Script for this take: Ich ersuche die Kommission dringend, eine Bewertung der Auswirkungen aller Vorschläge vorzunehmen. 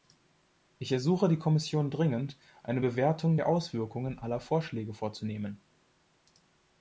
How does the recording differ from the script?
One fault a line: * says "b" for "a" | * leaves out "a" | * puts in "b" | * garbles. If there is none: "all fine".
all fine